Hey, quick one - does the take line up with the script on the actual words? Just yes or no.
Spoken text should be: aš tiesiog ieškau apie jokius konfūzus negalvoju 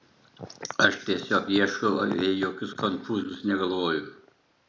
yes